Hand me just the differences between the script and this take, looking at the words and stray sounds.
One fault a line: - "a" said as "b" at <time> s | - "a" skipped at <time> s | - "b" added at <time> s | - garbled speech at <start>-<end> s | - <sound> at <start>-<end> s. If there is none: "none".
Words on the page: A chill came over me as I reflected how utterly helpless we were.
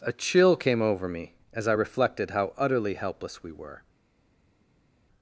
none